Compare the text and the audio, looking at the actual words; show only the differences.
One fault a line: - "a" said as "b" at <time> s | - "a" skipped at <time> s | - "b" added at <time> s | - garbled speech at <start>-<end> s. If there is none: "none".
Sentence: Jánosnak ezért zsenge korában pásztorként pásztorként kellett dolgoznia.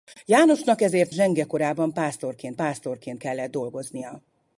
none